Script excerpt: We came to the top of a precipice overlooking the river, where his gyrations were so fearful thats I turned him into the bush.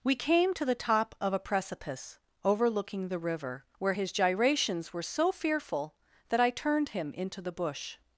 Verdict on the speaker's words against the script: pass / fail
fail